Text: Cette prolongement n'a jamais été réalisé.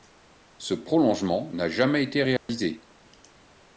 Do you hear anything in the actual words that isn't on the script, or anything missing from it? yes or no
yes